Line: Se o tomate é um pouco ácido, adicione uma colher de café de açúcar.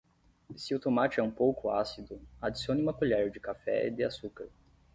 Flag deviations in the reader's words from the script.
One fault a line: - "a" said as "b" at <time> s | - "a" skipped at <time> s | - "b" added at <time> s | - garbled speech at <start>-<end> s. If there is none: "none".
none